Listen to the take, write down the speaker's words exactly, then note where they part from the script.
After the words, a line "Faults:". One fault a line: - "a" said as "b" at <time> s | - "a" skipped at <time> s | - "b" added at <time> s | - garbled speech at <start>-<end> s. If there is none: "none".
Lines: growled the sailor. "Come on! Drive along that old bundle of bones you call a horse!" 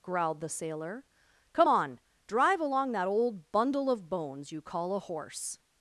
growled the sailor. "Come on! Drive along that old bundle of bones you call a horse!"
Faults:
none